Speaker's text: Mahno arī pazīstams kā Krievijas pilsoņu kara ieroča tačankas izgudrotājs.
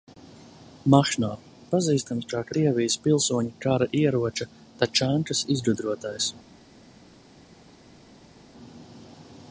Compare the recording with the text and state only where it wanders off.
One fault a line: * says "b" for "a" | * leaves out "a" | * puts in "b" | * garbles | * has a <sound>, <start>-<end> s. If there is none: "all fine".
* leaves out "arī"